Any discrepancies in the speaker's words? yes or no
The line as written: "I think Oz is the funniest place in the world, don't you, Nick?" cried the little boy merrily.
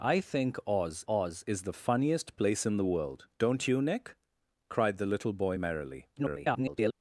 yes